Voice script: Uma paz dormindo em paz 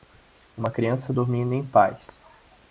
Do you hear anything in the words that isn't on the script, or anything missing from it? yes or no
yes